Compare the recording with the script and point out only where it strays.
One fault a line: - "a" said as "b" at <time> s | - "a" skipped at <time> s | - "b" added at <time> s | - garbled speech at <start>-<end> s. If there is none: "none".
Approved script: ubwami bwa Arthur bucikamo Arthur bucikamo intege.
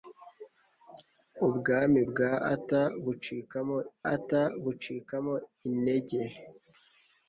none